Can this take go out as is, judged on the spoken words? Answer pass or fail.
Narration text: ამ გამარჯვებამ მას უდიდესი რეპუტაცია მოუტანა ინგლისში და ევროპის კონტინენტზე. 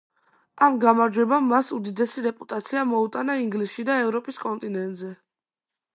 pass